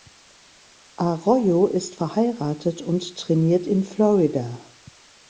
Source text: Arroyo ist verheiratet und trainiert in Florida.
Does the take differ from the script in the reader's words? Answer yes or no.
no